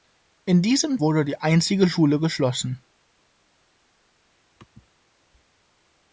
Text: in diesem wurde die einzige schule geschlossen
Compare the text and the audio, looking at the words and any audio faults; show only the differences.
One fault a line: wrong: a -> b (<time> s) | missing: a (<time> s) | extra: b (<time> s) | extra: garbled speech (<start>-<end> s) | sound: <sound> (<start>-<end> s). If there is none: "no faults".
no faults